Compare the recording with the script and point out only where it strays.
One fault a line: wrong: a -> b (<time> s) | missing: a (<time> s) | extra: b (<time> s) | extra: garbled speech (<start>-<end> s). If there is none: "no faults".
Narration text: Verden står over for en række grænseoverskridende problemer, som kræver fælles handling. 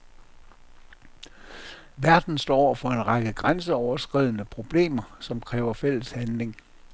no faults